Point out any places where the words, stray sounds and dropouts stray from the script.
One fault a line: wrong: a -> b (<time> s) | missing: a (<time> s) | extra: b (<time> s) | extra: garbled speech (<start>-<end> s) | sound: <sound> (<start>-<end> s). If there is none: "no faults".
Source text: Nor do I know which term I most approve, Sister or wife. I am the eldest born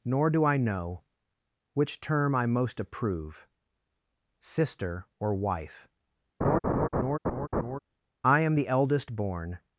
sound: laugh (6.4-7.8 s)